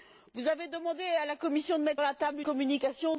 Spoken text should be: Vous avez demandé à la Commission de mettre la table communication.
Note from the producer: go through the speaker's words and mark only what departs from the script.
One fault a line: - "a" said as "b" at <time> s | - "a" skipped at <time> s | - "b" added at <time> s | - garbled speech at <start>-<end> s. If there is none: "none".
none